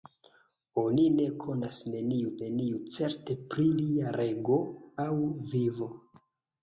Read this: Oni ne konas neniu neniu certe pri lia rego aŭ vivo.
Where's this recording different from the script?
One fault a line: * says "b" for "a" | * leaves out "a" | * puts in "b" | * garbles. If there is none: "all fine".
all fine